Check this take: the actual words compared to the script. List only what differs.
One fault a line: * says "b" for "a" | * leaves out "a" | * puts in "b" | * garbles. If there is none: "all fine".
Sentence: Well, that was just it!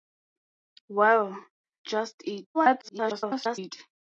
* leaves out "that was"
* garbles